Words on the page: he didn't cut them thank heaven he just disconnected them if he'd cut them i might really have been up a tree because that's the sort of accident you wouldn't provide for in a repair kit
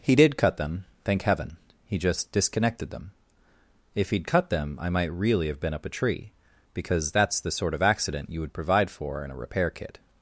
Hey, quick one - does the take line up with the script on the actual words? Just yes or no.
no